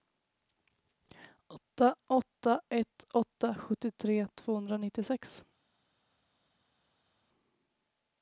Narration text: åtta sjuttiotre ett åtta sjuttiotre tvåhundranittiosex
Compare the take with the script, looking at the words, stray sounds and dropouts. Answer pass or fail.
fail